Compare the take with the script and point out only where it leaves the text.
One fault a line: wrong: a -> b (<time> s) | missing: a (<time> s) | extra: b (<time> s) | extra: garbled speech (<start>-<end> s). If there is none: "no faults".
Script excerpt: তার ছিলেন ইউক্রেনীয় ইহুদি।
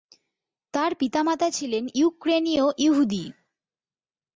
extra: পিতামাতা (1.0 s)